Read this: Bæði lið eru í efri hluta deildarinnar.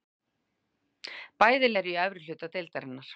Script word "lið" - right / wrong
wrong